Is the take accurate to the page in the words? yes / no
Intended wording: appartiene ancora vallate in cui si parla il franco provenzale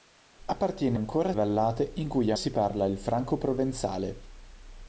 yes